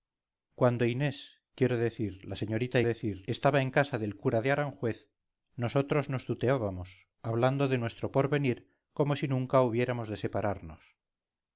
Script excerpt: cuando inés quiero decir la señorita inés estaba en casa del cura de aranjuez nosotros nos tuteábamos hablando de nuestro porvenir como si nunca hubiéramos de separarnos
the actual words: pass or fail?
fail